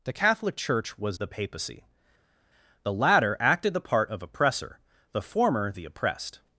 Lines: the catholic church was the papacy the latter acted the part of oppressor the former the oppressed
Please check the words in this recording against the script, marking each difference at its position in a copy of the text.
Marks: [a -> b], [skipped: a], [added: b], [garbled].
the catholic church was the papacy the latter acted the part of oppressor the former the oppressed